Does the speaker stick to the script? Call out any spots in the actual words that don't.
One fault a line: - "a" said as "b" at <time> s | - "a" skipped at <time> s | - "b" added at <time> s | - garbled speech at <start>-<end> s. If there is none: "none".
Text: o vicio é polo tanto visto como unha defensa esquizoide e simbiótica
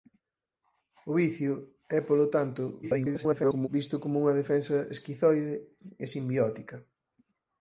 - garbled speech at 2.8-3.7 s